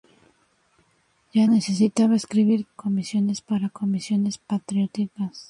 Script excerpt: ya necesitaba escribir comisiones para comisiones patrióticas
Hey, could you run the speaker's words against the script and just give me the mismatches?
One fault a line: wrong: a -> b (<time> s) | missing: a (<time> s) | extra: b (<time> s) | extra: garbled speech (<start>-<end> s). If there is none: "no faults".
no faults